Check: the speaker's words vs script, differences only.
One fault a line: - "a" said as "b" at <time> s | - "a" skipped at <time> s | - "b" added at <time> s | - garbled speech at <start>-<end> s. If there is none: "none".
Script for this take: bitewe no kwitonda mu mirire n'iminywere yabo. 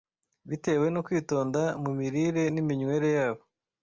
none